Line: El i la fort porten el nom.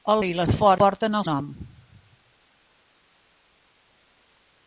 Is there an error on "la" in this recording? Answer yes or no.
no